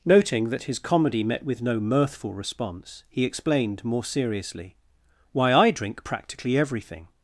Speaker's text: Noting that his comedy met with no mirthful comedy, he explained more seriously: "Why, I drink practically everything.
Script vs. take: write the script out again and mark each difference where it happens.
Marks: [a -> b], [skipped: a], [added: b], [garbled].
Noting that his comedy met with no mirthful [comedy, -> response] he explained more seriously: "Why, I drink practically everything.